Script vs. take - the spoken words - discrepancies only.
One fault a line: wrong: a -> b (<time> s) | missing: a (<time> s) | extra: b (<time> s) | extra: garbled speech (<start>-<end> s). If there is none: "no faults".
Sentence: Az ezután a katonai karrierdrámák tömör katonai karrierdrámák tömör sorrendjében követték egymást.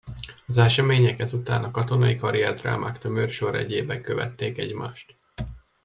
extra: események (0.6 s)
missing: katonai karrierdrámák tömör (3.3 s)